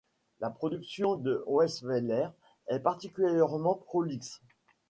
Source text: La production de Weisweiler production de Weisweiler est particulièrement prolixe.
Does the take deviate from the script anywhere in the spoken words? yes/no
yes